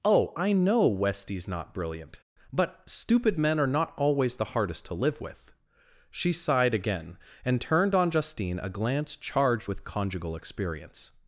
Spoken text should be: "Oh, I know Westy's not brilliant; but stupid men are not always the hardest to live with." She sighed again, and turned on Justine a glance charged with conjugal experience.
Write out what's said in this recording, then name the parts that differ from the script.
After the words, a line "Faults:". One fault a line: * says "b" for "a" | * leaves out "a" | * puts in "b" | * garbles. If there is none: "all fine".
"Oh, I know Westy's not brilliant; but stupid men are not always the hardest to live with." She sighed again, and turned on Justine a glance charged with conjugal experience.
Faults:
all fine